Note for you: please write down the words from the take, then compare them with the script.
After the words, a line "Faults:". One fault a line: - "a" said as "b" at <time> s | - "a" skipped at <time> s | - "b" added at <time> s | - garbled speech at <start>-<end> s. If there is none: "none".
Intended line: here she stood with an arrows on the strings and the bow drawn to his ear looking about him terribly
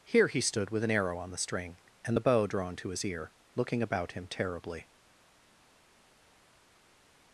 here he stood with an arrow on the string and the bow drawn to his ear looking about him terribly
Faults:
- "she" said as "he" at 0.3 s
- "arrows" said as "arrow" at 0.9 s
- "strings" said as "string" at 1.4 s